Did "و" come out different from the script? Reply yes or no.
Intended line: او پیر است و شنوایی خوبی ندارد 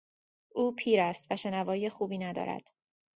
no